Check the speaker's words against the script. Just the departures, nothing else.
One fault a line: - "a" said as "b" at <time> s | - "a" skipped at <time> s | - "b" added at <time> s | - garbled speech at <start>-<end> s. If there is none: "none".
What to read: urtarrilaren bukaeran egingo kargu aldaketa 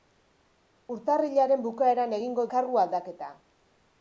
none